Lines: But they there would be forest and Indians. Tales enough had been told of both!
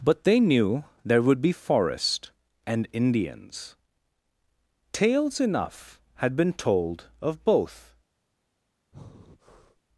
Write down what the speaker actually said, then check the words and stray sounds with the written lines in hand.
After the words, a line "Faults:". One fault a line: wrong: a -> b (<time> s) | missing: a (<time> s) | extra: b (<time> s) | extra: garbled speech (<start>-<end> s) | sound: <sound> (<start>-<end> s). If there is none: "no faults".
But they knew there would be forest and Indians. Tales enough had been told of both!
Faults:
extra: knew (0.4 s)
sound: breath (8.9-9.8 s)